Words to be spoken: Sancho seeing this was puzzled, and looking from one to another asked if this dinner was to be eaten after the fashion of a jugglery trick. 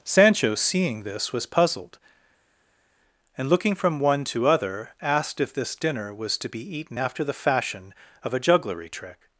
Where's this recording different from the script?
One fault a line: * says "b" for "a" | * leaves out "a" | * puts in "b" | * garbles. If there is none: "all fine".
* says "other" for "another"